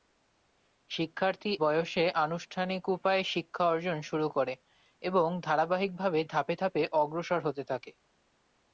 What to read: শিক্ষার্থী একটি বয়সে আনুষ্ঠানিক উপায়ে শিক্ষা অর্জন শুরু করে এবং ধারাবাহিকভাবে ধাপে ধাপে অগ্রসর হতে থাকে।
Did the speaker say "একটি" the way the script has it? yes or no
no